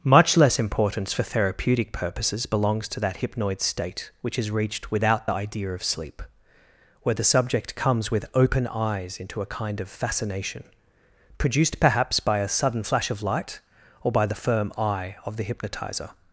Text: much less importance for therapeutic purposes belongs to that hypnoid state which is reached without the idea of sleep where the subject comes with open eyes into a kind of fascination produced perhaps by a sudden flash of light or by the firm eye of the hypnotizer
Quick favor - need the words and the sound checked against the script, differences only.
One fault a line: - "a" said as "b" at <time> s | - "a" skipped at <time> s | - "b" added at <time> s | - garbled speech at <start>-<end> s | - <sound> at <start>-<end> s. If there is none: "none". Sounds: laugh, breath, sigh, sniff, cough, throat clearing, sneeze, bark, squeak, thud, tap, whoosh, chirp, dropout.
none